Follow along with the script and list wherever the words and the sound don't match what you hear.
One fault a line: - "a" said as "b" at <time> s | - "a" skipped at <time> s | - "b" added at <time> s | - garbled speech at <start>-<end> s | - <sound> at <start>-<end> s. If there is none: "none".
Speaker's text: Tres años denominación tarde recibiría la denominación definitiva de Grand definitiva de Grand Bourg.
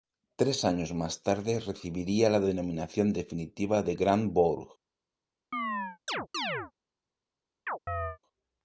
- "denominación" said as "más" at 0.9 s
- "definitiva de Grand" skipped at 4.3 s
- chirp at 5.5-6.7 s
- chirp at 7.7-8.2 s